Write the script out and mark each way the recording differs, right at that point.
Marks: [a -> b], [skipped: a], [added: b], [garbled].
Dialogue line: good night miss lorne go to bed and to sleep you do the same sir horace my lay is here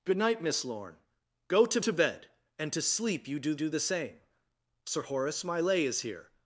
good night miss lorne go to [added: to] bed and to sleep you do [added: do] the same sir horace my lay is here